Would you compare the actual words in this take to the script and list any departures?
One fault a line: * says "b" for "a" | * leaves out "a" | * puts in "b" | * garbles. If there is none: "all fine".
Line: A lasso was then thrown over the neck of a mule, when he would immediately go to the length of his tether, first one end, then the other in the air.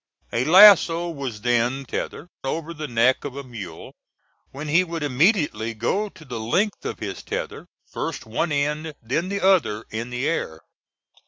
* says "tether" for "thrown"